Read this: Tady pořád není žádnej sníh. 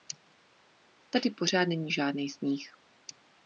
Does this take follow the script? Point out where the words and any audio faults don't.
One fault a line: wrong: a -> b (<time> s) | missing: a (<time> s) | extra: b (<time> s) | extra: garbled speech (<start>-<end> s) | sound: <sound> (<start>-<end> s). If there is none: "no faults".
no faults